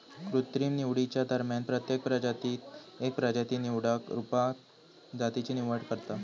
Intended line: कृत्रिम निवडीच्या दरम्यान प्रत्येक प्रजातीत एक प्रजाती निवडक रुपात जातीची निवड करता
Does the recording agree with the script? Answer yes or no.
yes